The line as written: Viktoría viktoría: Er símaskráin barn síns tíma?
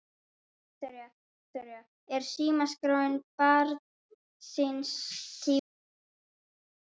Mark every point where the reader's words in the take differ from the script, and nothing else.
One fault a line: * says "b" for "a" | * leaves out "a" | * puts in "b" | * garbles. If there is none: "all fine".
all fine